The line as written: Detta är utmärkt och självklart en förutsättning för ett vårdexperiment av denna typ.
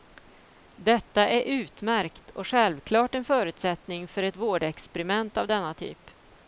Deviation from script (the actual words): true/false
false